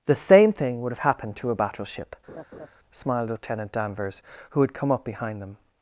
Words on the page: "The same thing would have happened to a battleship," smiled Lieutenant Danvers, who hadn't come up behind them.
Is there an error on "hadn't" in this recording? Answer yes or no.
yes